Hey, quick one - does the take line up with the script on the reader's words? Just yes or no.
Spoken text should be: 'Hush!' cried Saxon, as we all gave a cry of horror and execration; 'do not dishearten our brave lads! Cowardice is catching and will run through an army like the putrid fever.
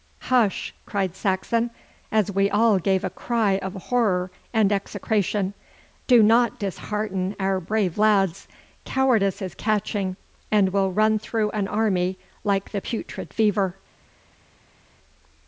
yes